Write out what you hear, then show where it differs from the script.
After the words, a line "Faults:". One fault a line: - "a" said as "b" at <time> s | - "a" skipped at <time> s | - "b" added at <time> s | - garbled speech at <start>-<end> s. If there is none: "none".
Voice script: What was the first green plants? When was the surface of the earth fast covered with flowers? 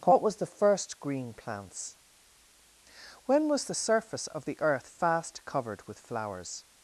What was the first green plants? When was the surface of the earth fast covered with flowers?
Faults:
none